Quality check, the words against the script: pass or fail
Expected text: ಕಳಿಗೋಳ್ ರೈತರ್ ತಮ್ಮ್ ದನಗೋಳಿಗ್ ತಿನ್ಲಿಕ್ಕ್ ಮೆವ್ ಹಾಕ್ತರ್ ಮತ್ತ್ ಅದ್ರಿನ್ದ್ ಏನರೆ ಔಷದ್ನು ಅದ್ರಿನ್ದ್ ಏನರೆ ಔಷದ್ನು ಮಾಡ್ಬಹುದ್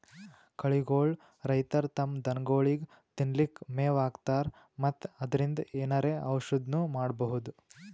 fail